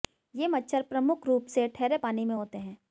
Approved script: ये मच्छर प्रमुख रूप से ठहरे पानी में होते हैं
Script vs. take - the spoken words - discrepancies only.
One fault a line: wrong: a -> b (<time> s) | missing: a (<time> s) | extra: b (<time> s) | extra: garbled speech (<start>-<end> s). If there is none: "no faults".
no faults